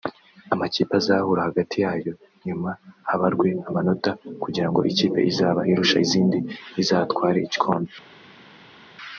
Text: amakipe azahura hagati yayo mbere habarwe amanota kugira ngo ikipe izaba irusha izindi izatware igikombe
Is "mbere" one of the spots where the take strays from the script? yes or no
yes